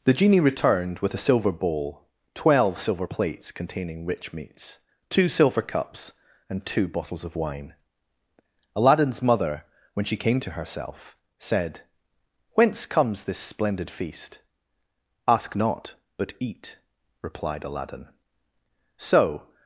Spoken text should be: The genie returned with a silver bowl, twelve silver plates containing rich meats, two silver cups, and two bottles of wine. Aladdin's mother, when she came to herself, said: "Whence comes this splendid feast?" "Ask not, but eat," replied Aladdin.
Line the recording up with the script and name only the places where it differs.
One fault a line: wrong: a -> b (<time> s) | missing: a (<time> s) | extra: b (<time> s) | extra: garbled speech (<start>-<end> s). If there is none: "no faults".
extra: So (19.0 s)